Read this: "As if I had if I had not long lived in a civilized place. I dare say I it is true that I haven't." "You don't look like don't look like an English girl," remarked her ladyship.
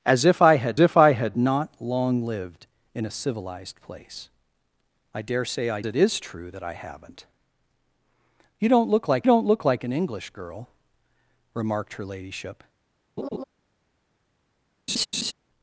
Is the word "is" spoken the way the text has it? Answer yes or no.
yes